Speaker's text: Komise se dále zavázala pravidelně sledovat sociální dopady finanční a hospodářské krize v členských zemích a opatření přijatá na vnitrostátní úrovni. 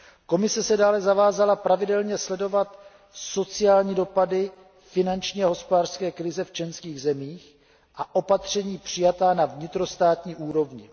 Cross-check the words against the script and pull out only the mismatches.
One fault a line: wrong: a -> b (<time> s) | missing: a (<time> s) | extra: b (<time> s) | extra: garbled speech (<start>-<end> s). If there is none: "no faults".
no faults